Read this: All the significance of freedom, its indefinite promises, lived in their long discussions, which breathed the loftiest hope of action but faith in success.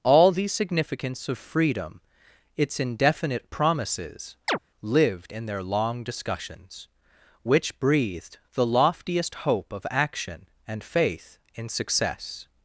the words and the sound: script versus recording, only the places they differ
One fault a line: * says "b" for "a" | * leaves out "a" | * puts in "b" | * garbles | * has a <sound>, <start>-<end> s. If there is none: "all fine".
* has a chirp, 4.5-4.6 s
* says "and" for "but"